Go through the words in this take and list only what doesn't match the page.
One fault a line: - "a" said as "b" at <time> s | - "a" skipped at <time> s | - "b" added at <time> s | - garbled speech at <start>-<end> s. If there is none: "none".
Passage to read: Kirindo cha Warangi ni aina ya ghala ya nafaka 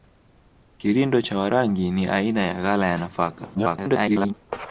- garbled speech at 3.5-4.3 s